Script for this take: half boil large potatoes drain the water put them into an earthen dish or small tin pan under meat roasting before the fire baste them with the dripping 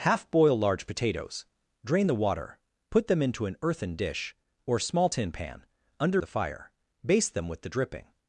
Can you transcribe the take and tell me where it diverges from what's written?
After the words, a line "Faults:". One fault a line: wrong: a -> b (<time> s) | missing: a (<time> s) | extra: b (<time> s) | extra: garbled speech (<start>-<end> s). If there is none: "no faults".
half boil large potatoes drain the water put them into an earthen dish or small tin pan under the fire baste them with the dripping
Faults:
missing: meat roasting before (6.2 s)